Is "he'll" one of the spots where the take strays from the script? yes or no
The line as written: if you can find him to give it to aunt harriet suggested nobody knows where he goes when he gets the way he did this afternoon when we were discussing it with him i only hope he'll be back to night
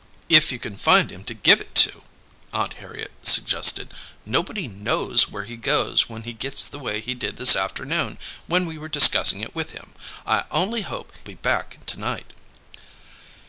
yes